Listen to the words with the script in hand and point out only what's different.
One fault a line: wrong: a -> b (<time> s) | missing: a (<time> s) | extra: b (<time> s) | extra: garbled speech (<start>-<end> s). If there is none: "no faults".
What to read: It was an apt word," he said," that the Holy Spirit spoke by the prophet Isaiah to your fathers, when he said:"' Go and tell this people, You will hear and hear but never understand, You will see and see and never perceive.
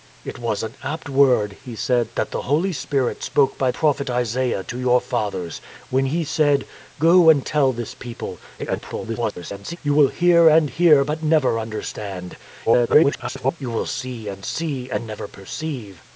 missing: the (3.7 s)
extra: garbled speech (8.6-9.8 s)
extra: garbled speech (12.7-13.6 s)